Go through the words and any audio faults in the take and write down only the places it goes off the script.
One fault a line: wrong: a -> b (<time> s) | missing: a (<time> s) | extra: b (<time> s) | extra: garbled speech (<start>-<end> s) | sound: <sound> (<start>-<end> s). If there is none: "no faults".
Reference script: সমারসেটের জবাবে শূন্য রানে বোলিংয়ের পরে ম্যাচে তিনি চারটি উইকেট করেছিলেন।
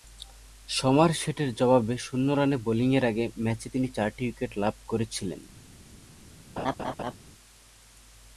wrong: পরে -> আগে (3.0 s)
extra: লাভ (4.6 s)
sound: laugh (6.6-7.1 s)